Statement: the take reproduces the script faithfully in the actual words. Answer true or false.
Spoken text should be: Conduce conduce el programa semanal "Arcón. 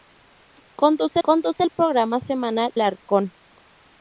true